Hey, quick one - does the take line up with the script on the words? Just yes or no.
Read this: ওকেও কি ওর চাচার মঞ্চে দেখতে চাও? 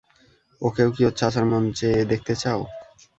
yes